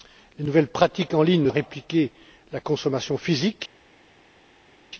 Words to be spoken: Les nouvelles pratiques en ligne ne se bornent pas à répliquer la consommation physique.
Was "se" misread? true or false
true